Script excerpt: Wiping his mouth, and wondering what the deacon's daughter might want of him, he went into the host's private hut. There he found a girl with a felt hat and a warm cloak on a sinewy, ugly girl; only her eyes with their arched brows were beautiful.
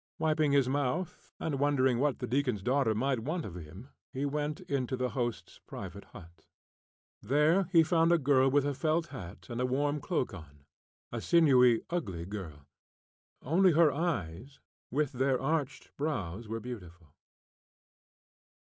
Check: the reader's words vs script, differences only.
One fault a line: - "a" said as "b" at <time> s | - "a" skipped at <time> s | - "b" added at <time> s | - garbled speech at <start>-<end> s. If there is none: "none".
none